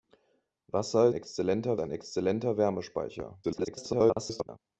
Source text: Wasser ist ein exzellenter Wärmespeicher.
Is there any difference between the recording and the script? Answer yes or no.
yes